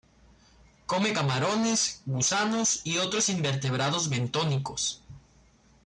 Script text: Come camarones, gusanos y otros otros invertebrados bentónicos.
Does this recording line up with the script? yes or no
no